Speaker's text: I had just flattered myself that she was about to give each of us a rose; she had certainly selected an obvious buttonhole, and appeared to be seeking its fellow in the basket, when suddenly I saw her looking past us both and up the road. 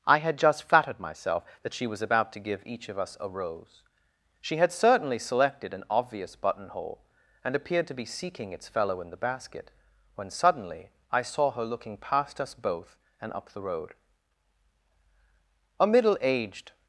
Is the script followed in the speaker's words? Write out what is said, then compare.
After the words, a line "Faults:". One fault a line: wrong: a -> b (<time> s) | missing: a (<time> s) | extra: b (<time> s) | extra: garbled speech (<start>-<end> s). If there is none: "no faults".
I had just flattered myself that she was about to give each of us a rose; she had certainly selected an obvious buttonhole, and appeared to be seeking its fellow in the basket, when suddenly I saw her looking past us both and up the road. A middle aged
Faults:
extra: A middle aged (15.8 s)